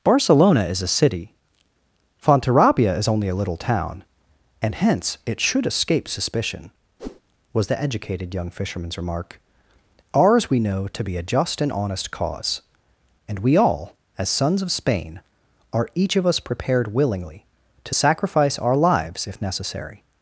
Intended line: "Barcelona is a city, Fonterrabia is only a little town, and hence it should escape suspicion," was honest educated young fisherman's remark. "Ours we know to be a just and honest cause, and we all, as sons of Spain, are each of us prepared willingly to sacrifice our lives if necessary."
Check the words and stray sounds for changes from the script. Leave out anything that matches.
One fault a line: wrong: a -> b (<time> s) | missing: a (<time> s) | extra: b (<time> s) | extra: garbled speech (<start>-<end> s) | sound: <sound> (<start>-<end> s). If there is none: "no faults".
sound: whoosh (7.0-7.2 s)
wrong: honest -> the (7.7 s)